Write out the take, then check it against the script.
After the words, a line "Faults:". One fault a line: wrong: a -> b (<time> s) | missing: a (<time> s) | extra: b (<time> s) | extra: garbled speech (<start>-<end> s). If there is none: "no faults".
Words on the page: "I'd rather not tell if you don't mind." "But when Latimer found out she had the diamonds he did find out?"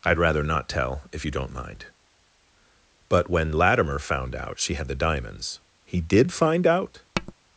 "I'd rather not tell if you don't mind." "But when Latimer found out she had the diamonds he did find out?"
Faults:
no faults